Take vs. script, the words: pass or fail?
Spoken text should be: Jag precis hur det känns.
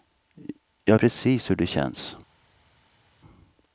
pass